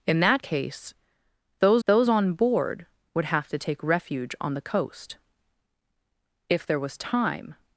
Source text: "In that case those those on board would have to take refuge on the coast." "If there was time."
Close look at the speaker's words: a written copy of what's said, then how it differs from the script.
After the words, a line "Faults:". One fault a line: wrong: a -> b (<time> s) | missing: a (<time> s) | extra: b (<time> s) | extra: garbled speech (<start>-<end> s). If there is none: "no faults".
"In that case those those on board would have to take refuge on the coast." "If there was time."
Faults:
no faults